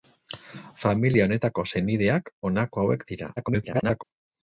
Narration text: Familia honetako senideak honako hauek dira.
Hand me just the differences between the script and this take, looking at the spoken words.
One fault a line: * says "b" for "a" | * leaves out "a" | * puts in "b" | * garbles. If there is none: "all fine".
* garbles